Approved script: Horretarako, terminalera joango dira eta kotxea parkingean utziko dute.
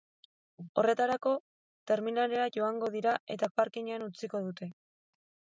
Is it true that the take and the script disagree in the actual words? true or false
true